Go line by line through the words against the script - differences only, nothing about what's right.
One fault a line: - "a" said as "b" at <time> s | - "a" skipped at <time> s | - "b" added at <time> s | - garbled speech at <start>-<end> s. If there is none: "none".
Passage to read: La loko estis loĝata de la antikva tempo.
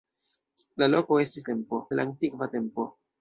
- "loĝata" said as "tempo" at 1.5 s